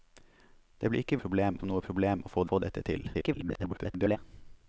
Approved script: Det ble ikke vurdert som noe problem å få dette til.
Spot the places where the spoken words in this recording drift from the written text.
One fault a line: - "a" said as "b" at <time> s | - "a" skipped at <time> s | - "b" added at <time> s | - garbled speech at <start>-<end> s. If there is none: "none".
- "vurdert" said as "problem" at 1.2 s
- "få" added at 2.5 s
- garbled speech at 3.1-4.2 s